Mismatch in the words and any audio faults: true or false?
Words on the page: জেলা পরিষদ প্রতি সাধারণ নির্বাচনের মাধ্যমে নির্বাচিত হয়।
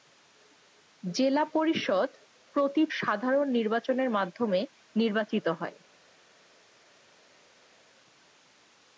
false